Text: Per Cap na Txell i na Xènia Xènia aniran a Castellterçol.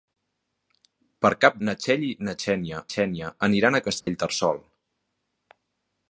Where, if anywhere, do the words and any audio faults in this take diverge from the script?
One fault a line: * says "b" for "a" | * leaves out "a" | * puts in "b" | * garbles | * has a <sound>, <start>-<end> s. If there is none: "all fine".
* has a dropout, 4.0-4.1 s